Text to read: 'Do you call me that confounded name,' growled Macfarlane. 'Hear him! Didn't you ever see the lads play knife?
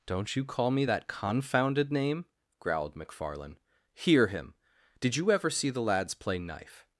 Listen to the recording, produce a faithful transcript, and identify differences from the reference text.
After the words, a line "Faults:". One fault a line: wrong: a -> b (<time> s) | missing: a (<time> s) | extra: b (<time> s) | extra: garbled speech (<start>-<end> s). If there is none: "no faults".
'Don't you call me that confounded name,' growled Macfarlane. 'Hear him! Did you ever see the lads play knife?
Faults:
wrong: Do -> Don't (0.1 s)
wrong: Didn't -> Did (5.0 s)